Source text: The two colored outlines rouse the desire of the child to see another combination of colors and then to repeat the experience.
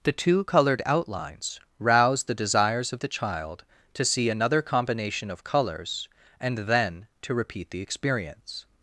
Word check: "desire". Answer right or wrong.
wrong